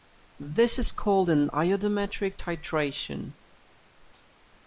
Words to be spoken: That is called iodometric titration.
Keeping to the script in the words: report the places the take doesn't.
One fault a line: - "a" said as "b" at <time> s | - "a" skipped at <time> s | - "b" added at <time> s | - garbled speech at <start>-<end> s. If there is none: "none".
- "That" said as "This" at 0.4 s
- "an" added at 1.3 s